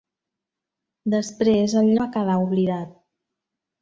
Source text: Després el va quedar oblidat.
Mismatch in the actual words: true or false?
false